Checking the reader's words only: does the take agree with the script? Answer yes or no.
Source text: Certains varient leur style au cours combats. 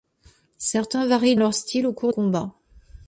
yes